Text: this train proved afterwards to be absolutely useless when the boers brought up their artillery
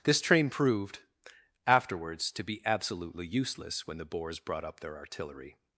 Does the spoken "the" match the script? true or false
true